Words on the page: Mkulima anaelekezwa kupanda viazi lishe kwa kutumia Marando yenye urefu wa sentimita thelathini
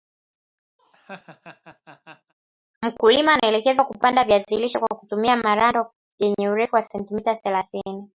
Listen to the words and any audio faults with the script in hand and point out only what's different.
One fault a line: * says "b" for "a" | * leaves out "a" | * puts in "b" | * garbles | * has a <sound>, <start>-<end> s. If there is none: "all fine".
* has a laugh, 0.8-2.3 s